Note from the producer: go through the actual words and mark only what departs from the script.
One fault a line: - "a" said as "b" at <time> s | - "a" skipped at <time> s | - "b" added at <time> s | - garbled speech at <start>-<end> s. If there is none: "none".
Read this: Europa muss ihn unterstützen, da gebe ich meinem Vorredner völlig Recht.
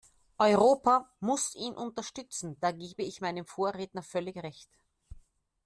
none